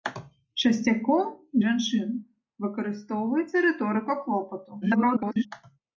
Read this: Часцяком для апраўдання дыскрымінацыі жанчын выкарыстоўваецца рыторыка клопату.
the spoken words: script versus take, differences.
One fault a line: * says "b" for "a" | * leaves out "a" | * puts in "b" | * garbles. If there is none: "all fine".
* leaves out "для апраўдання дыскрымінацыі"
* garbles